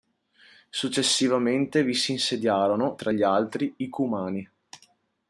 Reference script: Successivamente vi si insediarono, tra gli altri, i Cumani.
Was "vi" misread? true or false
false